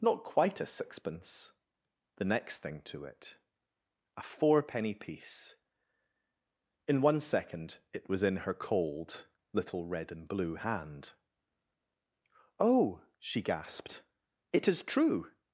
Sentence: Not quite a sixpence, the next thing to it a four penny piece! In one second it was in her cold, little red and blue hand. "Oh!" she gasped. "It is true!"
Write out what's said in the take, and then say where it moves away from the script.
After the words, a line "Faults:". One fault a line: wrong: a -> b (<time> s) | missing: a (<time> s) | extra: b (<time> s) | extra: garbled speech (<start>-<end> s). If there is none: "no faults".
Not quite a sixpence, the next thing to it a four penny piece! In one second it was in her cold, little red and blue hand. "Oh!" she gasped. "It is true!"
Faults:
no faults